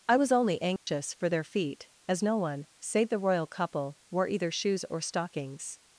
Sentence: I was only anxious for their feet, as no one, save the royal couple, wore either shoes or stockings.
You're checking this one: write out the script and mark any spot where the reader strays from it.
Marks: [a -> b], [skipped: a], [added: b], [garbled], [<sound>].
I was only anxious [dropout] for their feet, as no one, save the royal couple, wore either shoes or stockings.